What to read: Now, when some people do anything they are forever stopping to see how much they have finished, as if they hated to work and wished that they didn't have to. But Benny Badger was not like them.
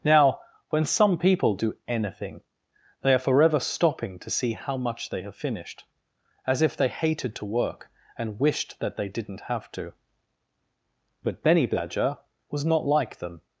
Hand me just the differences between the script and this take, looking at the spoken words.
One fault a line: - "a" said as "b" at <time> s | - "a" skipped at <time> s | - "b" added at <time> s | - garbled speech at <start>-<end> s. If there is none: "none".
none